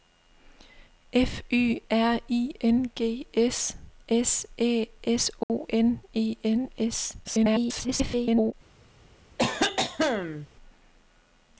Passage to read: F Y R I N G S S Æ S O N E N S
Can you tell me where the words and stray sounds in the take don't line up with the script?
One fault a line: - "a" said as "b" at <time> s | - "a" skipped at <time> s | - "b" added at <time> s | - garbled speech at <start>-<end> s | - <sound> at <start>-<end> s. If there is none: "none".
- dropout at 5.4-5.5 s
- garbled speech at 7.2-8.5 s
- cough at 9.4-10.5 s